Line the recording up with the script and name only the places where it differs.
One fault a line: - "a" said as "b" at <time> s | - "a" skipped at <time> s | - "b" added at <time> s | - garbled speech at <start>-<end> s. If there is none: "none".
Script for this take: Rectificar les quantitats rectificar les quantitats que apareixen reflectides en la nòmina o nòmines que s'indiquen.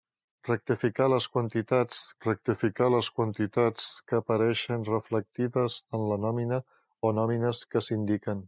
none